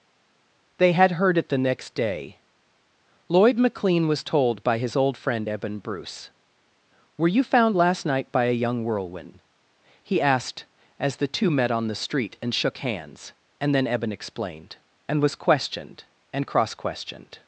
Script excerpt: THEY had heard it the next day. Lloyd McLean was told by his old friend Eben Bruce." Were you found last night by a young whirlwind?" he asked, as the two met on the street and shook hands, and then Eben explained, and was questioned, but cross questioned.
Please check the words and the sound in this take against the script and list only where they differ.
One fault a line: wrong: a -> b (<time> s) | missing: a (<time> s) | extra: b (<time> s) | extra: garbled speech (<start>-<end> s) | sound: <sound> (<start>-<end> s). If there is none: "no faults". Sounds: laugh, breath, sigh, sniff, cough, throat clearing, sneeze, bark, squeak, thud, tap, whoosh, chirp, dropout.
wrong: but -> and (16.3 s)